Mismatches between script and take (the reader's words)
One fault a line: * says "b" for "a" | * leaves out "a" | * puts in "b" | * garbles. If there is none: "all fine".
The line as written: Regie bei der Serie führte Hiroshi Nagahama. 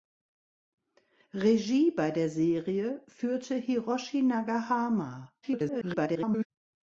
* garbles